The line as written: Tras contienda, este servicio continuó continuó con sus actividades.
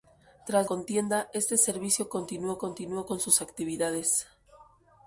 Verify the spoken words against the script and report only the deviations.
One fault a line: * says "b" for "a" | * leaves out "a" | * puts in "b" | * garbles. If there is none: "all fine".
all fine